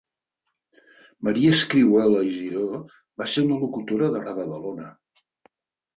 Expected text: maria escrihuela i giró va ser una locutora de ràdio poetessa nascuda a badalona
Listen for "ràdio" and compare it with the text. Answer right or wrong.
wrong